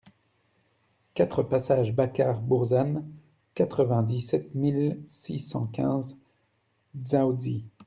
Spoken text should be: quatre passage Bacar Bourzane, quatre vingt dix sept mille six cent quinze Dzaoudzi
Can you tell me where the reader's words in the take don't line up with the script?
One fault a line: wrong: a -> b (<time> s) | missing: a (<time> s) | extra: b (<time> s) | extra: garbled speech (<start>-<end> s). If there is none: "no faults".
no faults